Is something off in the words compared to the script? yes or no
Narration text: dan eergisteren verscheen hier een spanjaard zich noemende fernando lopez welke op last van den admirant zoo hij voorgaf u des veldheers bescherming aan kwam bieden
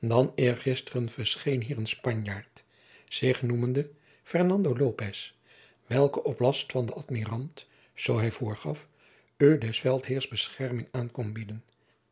no